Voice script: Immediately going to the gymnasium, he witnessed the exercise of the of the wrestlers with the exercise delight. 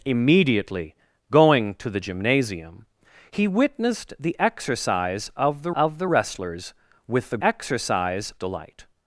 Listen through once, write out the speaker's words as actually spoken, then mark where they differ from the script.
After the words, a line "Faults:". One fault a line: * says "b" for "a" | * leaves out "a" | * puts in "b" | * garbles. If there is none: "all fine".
Immediately going to the gymnasium, he witnessed the exercise of the of the wrestlers with the exercise delight.
Faults:
all fine